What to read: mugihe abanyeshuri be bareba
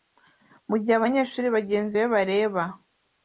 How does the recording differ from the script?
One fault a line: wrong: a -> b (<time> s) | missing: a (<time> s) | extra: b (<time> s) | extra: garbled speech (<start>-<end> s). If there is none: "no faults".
extra: bagenzi (1.6 s)